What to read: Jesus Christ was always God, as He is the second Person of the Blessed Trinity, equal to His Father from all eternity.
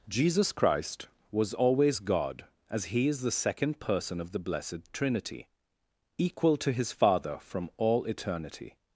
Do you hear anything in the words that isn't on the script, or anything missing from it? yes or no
no